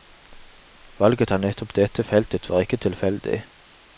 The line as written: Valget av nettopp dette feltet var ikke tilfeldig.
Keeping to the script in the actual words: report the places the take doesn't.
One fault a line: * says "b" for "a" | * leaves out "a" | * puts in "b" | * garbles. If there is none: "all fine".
all fine